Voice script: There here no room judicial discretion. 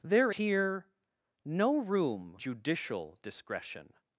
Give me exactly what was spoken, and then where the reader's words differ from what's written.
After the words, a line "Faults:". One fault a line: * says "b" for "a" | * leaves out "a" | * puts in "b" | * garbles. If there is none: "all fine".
There here no room judicial discretion.
Faults:
all fine